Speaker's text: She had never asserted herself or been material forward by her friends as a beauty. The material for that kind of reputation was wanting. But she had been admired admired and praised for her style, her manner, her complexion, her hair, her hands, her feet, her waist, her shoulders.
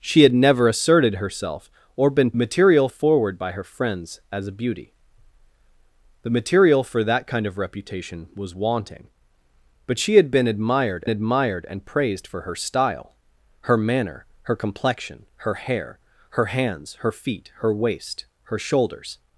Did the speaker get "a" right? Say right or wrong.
right